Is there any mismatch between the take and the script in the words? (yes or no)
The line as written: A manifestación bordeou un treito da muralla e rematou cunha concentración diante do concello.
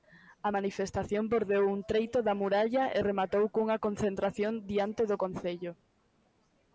no